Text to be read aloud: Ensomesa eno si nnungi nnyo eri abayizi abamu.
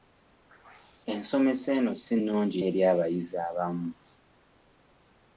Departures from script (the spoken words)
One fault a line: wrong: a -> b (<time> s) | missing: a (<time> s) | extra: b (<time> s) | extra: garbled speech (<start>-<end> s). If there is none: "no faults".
missing: nnyo (2.6 s)